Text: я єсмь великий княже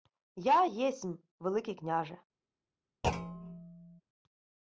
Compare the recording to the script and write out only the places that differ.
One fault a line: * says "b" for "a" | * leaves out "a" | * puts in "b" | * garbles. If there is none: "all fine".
all fine